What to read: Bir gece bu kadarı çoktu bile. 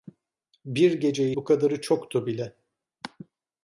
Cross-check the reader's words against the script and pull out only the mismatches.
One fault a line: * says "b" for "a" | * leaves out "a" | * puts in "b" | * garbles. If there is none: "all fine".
all fine